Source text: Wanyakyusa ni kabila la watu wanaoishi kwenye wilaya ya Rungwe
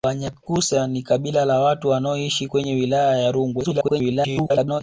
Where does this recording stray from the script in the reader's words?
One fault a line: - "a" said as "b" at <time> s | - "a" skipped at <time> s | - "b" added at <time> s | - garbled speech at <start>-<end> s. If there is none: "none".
- garbled speech at 3.6-4.8 s